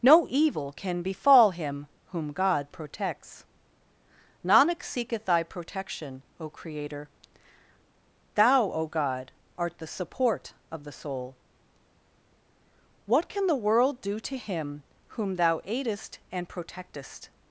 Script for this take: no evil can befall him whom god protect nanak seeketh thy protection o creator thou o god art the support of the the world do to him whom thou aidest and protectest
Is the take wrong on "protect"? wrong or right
wrong